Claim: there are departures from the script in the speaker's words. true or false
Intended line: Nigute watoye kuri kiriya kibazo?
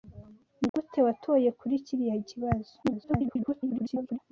true